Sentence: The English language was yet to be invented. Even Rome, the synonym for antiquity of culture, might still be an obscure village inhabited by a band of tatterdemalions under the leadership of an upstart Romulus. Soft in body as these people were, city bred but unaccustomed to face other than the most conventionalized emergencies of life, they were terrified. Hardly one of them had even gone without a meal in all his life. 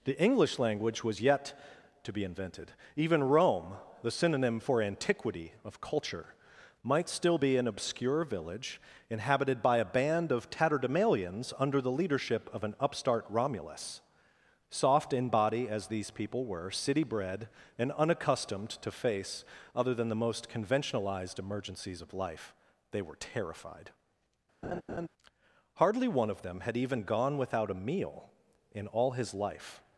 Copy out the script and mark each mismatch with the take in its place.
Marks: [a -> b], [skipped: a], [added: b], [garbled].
The English language was yet to be invented. Even Rome, the synonym for antiquity of culture, might still be an obscure village inhabited by a band of tatterdemalions under the leadership of an upstart Romulus. Soft in body as these people were, city bred [but -> and] unaccustomed to face other than the most conventionalized emergencies of life, they were terrified. Hardly one of them had even gone without a meal in all his life.